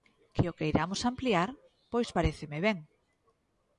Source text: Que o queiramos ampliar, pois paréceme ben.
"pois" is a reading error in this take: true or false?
false